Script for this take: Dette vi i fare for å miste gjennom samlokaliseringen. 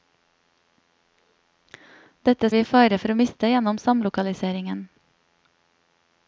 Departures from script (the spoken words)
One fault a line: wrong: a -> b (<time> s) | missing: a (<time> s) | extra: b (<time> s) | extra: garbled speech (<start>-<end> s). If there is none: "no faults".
no faults